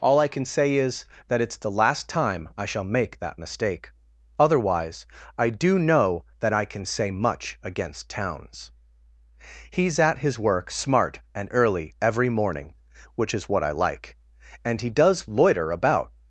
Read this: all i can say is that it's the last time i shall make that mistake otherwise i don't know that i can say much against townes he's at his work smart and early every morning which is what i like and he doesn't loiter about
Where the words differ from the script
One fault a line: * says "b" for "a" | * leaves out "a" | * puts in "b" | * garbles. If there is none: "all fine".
* says "do" for "don't"
* says "does" for "doesn't"